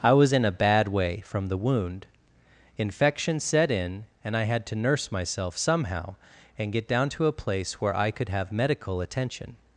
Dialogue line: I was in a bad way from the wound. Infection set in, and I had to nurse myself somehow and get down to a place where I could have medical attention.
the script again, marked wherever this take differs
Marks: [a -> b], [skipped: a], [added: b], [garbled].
I was in a bad way from the wound. Infection set in, and I had to nurse myself somehow and get down to a place where I could have medical attention.